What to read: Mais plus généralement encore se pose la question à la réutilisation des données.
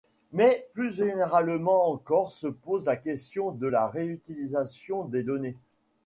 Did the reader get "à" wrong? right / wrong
wrong